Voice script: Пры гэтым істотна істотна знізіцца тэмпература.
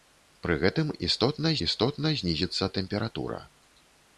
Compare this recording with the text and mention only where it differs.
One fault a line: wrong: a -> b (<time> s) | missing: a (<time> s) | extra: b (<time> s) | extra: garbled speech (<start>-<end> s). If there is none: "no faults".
no faults